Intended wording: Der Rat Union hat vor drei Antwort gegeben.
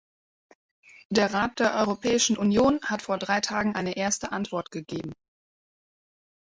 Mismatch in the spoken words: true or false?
true